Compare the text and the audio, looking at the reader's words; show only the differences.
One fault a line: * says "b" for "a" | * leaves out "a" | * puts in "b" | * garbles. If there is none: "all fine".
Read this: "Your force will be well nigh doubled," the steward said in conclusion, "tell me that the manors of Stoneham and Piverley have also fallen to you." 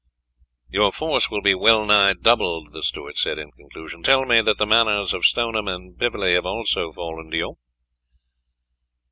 all fine